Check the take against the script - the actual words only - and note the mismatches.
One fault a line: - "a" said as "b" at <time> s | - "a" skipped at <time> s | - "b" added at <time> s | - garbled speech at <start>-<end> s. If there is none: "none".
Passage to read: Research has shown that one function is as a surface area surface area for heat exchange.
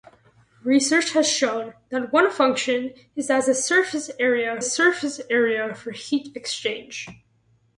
none